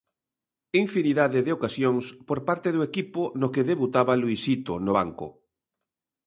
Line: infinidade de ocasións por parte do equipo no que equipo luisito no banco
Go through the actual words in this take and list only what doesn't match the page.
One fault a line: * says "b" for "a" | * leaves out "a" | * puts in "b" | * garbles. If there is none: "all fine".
* says "debutaba" for "equipo"